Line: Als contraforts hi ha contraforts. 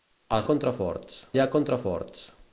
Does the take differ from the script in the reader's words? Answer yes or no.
no